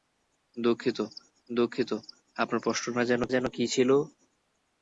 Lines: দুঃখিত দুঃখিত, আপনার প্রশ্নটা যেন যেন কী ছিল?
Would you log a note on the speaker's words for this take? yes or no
no